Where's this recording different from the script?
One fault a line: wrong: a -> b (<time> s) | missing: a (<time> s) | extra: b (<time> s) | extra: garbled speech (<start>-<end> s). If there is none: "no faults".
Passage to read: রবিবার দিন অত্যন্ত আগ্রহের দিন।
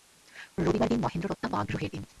extra: মহেন্দ্রের (1.0 s)